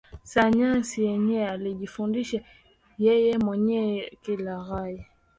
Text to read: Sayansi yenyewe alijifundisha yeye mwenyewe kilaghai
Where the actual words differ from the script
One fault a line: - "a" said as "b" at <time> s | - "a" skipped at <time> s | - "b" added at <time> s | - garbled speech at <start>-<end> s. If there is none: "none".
none